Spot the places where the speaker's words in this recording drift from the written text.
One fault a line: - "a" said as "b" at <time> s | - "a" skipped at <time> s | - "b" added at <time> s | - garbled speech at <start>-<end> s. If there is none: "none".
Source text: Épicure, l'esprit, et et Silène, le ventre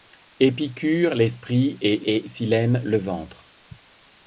none